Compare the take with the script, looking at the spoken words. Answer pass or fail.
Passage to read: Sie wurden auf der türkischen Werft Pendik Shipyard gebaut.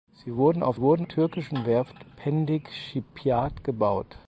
fail